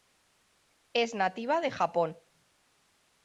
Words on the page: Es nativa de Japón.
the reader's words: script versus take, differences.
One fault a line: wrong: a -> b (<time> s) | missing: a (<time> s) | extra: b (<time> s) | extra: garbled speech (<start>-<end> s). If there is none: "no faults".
no faults